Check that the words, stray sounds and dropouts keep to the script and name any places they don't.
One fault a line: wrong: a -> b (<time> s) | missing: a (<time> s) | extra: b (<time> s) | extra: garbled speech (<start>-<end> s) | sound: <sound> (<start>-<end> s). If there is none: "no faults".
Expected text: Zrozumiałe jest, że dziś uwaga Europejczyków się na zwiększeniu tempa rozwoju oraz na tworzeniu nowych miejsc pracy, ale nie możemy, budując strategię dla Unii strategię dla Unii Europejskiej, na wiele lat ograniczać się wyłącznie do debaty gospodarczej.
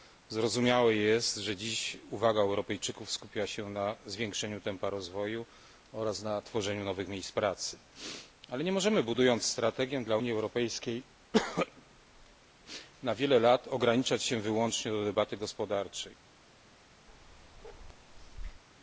extra: skupia (3.1 s)
missing: strategię dla Unii (10.3 s)
sound: bark (17.1-18.6 s)